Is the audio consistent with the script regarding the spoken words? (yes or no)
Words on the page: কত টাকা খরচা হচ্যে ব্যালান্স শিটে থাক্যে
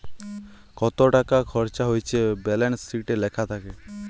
no